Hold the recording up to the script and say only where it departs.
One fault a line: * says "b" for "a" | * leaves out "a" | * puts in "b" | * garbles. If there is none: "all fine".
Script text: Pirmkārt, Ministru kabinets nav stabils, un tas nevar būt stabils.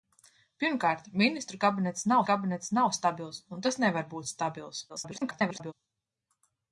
* puts in "kabinets nav"
* garbles